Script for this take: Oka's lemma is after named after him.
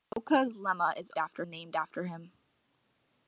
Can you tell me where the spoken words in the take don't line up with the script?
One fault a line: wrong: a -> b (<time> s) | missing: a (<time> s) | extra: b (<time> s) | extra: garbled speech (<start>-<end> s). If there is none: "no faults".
no faults